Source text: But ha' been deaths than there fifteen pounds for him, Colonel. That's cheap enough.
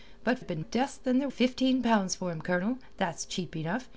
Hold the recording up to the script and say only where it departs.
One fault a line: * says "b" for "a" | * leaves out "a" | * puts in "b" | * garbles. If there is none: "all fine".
all fine